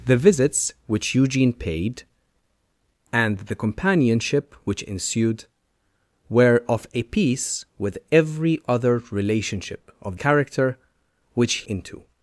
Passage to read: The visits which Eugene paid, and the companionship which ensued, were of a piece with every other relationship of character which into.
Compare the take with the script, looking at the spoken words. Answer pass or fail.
pass